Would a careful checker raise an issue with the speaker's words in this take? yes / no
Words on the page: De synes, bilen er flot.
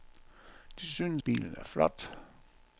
no